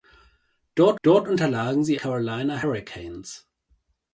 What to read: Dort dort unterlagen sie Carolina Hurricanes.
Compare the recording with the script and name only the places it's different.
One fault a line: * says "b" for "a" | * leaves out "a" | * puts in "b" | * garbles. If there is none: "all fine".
all fine